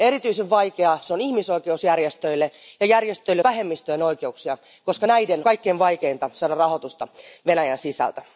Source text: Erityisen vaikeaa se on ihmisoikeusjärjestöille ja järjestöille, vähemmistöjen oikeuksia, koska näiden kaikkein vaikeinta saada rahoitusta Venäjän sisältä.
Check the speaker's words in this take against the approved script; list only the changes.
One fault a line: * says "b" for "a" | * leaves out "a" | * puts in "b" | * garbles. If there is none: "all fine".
all fine